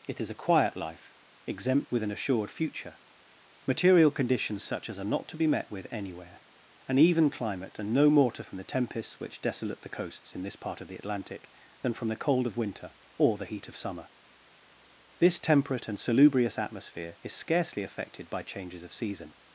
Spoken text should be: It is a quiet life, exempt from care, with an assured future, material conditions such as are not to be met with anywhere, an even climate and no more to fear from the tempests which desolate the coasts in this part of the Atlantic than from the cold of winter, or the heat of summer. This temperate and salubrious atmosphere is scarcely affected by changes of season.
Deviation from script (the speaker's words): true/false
true